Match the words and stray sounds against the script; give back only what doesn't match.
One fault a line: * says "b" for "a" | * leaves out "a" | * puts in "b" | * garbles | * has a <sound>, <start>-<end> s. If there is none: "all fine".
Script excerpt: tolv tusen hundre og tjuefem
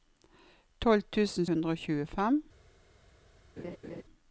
* has a laugh, 3.6-4.0 s